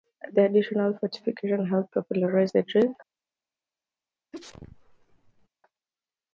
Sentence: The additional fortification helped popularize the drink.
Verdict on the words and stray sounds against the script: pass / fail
fail